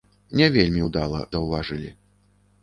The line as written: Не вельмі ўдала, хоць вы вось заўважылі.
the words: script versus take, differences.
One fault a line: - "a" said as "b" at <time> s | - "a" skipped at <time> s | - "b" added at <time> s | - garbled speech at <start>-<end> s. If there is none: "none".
- "хоць вы вось" skipped at 1.2 s